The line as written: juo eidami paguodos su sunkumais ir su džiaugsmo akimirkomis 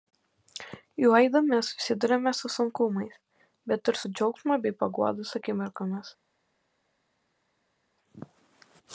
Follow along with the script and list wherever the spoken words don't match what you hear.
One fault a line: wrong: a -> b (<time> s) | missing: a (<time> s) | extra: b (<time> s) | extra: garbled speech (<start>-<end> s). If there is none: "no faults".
wrong: paguodos -> susiduriame (1.7 s)
extra: bet (3.7 s)
extra: bei paguodos (4.6 s)